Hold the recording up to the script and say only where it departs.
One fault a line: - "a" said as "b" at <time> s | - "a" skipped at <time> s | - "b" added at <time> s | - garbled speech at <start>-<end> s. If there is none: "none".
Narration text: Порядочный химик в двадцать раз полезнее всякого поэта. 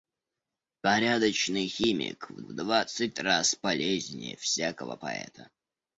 - "в" added at 2.4 s